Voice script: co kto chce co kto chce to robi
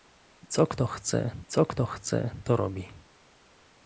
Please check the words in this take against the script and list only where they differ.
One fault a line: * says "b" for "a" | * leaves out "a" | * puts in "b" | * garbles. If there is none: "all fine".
all fine